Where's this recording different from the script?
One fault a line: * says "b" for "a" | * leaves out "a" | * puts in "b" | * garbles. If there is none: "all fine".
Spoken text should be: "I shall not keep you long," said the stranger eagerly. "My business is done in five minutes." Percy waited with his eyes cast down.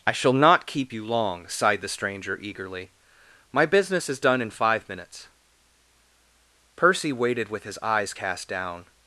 * says "sighed" for "said"